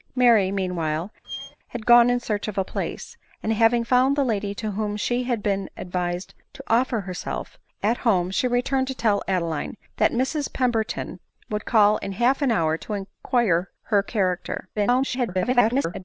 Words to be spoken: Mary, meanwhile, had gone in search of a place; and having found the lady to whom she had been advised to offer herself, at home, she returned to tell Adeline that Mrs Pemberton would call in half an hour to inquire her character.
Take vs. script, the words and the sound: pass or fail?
fail